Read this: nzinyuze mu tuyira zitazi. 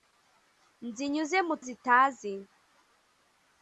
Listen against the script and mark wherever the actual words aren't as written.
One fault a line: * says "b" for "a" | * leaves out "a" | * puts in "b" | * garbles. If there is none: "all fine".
* leaves out "tuyira"